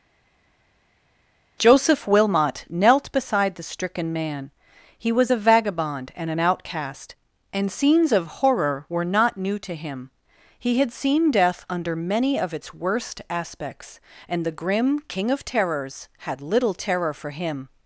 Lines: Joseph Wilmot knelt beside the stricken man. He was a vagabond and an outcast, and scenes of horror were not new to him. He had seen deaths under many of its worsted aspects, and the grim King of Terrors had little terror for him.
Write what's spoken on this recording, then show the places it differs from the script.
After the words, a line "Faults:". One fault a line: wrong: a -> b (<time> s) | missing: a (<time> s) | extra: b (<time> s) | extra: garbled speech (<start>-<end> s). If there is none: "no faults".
Joseph Wilmot knelt beside the stricken man. He was a vagabond and an outcast, and scenes of horror were not new to him. He had seen death under many of its worst aspects, and the grim King of Terrors had little terror for him.
Faults:
wrong: deaths -> death (11.3 s)
wrong: worsted -> worst (12.7 s)